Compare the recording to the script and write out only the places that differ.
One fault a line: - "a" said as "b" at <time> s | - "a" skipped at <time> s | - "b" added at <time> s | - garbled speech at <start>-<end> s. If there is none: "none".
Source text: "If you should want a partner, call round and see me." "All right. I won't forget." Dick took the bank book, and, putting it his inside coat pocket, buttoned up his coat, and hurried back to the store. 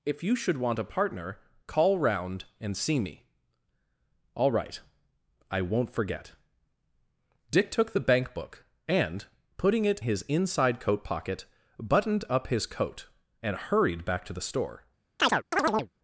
none